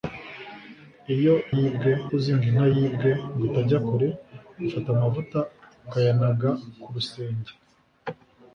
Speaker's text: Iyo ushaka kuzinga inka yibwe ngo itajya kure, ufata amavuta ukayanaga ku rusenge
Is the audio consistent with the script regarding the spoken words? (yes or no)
no